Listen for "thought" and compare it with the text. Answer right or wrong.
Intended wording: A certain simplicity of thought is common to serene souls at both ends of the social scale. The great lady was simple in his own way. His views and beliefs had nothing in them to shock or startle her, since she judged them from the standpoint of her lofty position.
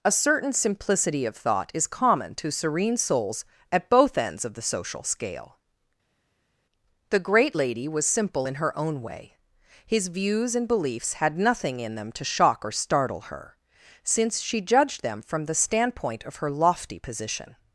right